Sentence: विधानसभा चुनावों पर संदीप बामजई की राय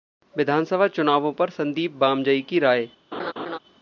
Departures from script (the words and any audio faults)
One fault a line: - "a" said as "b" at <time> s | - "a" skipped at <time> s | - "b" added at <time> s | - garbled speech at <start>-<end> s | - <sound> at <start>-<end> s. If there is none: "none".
- laugh at 3.1-3.6 s